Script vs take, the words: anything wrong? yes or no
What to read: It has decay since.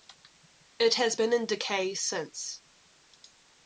yes